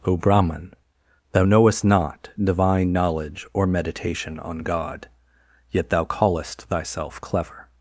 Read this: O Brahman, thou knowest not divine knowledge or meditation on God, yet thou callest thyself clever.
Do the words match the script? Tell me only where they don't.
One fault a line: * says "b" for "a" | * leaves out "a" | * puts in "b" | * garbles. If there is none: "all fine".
all fine